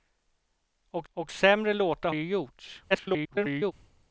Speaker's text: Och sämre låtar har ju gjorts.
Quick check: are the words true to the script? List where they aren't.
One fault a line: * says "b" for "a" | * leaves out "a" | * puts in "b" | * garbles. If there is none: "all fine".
* puts in "och"
* leaves out "har"
* garbles